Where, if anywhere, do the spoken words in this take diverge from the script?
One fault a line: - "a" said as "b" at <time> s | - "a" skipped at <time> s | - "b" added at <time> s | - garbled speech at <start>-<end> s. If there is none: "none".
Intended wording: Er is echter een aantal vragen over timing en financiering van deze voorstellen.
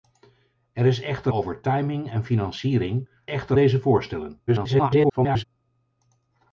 - "een aantal vragen" skipped at 1.3 s
- "van" said as "echter" at 3.3 s
- garbled speech at 4.5-5.4 s